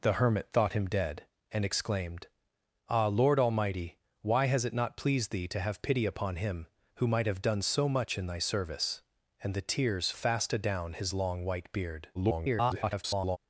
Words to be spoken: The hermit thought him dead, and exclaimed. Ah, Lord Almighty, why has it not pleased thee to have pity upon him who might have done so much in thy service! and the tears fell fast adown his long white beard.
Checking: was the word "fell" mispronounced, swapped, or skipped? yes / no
yes